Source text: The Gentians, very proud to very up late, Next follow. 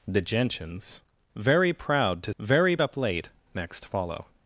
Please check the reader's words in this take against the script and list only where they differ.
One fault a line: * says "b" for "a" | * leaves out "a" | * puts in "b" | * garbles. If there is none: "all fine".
all fine